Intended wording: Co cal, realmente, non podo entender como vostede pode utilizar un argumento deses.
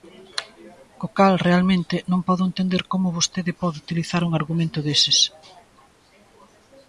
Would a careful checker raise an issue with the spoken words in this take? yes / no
no